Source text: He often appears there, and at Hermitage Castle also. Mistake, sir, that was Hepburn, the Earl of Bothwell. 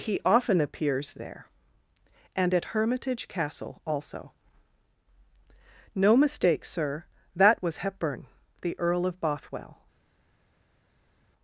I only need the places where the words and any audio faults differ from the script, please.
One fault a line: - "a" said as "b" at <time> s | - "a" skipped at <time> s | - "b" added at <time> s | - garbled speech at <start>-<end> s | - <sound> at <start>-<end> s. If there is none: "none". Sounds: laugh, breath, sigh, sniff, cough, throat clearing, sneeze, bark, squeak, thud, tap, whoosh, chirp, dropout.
- "No" added at 5.9 s